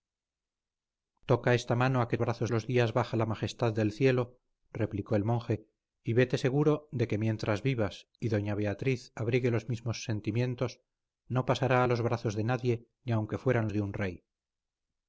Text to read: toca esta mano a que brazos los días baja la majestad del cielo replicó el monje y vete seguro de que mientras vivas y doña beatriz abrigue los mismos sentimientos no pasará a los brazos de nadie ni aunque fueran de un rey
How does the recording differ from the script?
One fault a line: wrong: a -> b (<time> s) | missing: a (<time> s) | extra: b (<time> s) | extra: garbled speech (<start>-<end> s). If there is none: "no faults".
no faults